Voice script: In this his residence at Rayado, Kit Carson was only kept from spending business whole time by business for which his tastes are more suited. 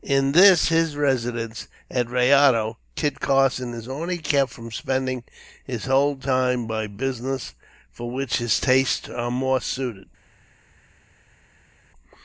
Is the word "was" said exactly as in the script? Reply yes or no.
no